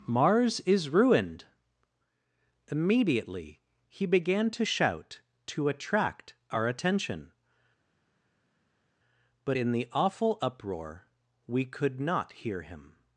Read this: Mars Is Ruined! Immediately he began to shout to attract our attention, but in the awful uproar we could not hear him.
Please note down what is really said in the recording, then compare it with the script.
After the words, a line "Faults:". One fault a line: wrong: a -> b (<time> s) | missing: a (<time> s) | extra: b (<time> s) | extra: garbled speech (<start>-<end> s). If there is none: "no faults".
Mars Is Ruined! Immediately he began to shout to attract our attention, but in the awful uproar we could not hear him.
Faults:
no faults